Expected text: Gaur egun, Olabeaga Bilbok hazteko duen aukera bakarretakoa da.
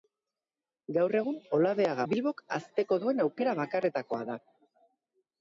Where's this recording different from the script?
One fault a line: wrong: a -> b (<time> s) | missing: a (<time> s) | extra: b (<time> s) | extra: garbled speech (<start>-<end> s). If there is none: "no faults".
no faults